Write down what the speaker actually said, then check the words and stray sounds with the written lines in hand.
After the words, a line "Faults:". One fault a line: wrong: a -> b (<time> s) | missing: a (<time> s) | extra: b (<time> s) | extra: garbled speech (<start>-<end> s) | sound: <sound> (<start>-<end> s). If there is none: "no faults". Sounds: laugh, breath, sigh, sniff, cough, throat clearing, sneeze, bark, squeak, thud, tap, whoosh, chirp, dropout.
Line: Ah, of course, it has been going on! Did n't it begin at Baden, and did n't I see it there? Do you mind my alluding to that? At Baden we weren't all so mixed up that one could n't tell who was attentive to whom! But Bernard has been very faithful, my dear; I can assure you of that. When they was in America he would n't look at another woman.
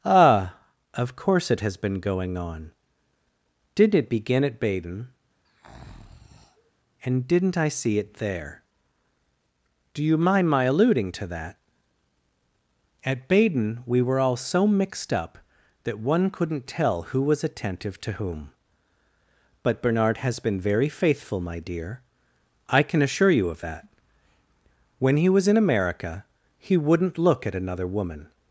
Ah, of course, it has been going on! Did n't it begin at Baden, and did n't I see it there? Do you mind my alluding to that? At Baden we were all so mixed up that one could n't tell who was attentive to whom! But Bernard has been very faithful, my dear; I can assure you of that. When he was in America he would n't look at another woman.
Faults:
sound: breath (5.5-6.7 s)
wrong: weren't -> were (14.0 s)
wrong: they -> he (25.2 s)